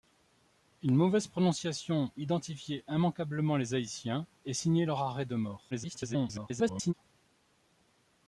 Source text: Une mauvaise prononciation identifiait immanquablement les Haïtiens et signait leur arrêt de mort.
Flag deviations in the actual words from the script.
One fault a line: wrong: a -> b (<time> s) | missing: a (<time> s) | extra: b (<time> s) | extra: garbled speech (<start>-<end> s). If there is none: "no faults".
extra: garbled speech (5.7-6.9 s)